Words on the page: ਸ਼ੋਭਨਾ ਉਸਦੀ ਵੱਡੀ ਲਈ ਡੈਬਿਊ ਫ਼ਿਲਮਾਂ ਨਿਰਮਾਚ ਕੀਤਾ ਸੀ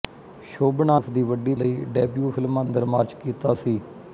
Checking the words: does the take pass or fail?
pass